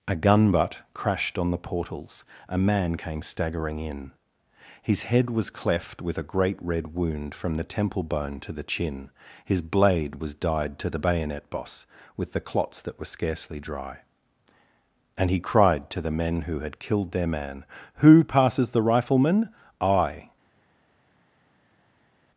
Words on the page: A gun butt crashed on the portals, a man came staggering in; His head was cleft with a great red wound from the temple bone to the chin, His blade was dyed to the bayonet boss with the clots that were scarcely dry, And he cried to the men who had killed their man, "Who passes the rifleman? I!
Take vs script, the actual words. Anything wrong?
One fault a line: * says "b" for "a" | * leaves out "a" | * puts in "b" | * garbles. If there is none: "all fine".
all fine